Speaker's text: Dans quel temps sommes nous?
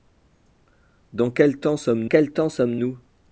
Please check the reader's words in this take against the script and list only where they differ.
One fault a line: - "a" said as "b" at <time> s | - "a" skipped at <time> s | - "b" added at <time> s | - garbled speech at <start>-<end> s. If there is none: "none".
- "quel temps sommes" added at 2.0 s